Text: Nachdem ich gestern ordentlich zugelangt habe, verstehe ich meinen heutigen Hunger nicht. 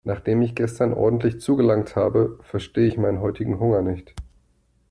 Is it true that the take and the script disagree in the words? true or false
false